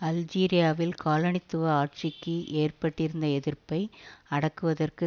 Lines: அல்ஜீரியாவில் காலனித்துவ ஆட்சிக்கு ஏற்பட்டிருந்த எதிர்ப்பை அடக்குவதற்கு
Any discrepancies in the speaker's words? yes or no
no